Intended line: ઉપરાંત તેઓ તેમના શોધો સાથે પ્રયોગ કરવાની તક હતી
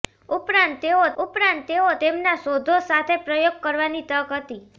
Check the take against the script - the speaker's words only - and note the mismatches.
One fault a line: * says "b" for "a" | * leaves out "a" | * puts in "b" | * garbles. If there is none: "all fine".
* puts in "ઉપરાંત તેઓ"